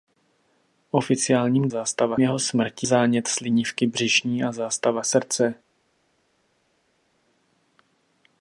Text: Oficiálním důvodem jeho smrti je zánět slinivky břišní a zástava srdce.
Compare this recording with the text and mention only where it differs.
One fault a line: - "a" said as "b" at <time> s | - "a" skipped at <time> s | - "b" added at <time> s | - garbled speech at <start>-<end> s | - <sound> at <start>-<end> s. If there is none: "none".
- "důvodem" said as "zástava" at 1.7 s
- "je" skipped at 2.9 s